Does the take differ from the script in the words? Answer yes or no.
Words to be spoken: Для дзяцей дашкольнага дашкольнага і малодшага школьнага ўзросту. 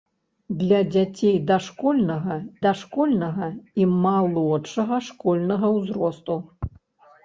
no